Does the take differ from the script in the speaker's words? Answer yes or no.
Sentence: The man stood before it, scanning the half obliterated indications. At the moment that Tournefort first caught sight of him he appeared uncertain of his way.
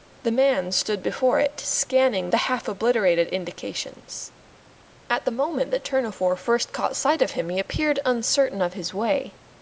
no